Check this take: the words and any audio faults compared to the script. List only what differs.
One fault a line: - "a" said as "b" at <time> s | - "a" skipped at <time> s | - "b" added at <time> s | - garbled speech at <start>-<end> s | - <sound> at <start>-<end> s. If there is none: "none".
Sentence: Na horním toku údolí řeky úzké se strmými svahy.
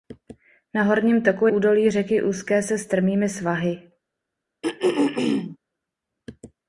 - throat clearing at 4.6-5.6 s